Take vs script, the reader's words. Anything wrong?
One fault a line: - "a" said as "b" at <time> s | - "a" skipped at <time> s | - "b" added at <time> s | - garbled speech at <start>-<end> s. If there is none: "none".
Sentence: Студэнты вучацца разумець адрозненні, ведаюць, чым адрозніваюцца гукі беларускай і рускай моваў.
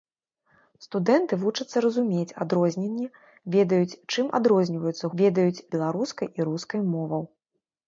- "гукі" said as "ведаюць" at 5.2 s